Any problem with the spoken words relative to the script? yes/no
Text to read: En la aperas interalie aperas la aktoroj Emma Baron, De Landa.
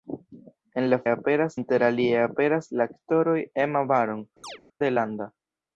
no